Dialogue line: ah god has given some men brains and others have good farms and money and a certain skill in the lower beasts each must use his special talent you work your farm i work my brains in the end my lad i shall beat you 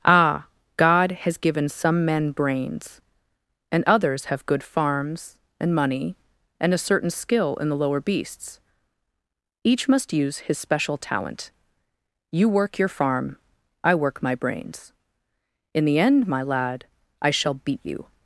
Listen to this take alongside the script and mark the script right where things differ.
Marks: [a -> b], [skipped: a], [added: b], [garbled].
ah god has given some men brains and others have good farms and money and a certain skill in the lower beasts each must use his special talent you work your farm i work my brains in the end my lad i shall beat you